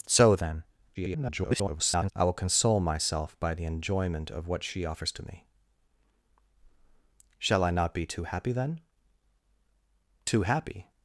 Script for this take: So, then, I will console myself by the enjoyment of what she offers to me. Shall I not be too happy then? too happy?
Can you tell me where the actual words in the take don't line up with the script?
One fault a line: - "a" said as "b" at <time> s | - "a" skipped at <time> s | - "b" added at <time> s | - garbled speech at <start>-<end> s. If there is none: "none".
- garbled speech at 0.9-2.1 s